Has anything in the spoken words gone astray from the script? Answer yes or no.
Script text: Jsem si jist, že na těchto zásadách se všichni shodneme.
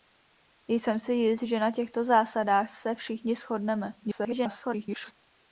yes